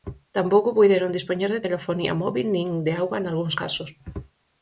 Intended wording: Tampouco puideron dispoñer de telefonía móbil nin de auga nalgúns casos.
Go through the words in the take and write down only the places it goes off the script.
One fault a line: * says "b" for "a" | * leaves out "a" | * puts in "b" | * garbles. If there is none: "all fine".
all fine